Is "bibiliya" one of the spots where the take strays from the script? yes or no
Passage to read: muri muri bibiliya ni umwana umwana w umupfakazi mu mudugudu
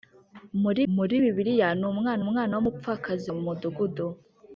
no